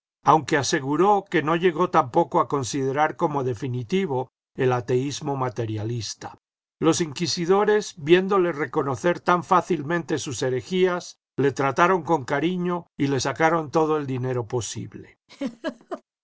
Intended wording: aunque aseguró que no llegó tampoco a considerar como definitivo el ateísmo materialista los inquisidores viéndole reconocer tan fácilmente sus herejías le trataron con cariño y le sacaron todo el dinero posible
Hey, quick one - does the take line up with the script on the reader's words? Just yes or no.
yes